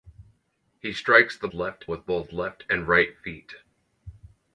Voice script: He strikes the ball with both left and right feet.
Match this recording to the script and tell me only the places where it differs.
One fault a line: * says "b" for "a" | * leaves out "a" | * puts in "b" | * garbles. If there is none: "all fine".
* says "left" for "ball"